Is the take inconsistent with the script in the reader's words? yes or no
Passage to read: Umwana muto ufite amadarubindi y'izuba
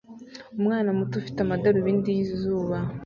no